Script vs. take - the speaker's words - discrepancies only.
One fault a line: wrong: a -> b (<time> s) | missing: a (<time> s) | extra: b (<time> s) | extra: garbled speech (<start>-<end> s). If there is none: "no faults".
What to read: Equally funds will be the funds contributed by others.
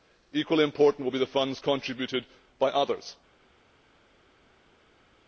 wrong: funds -> important (0.6 s)